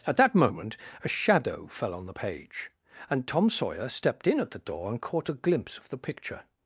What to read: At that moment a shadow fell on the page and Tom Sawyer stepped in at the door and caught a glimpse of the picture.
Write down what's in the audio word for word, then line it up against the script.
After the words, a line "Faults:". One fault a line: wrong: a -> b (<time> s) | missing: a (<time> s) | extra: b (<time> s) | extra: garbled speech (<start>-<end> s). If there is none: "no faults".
At that moment a shadow fell on the page and Tom Sawyer stepped in at the door and caught a glimpse of the picture.
Faults:
no faults